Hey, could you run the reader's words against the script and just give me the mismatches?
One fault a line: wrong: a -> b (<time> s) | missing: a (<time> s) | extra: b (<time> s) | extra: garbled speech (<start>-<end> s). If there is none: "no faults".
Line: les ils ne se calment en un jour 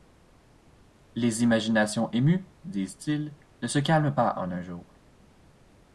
extra: imaginations émues disent (1.4 s)
extra: pas (4.1 s)